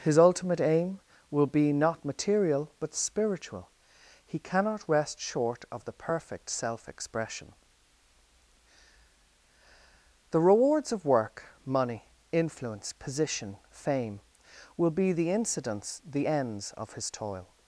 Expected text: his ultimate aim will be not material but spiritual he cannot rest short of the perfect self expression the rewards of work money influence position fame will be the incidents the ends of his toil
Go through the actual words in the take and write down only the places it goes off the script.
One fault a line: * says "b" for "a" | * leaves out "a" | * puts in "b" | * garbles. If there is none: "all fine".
all fine